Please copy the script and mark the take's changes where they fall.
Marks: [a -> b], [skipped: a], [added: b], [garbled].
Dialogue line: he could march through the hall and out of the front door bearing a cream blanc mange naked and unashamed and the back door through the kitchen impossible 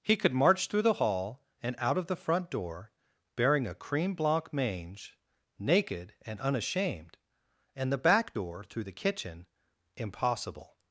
he could march through the hall and out of the front door bearing a cream blanc mange naked and unashamed and the back door through the kitchen impossible